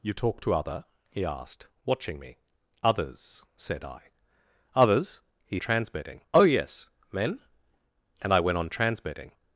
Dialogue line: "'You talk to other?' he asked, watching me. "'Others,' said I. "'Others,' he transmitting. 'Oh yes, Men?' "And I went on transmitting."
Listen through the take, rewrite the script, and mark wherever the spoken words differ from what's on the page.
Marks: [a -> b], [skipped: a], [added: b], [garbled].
"'You talk to other?' he asked, watching me. "'Others,' said I. "'Others,' he transmitting. 'Oh yes, Men?' "And I went on transmitting."